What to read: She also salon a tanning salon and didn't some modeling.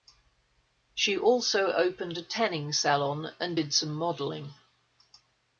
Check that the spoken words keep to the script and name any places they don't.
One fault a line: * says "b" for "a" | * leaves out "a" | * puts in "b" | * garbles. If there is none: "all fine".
* says "opened" for "salon"
* says "did" for "didn't"